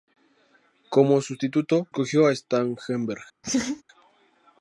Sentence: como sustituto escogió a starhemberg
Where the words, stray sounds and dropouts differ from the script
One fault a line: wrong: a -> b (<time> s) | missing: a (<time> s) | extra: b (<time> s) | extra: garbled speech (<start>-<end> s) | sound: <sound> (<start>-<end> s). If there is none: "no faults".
sound: laugh (3.4-3.8 s)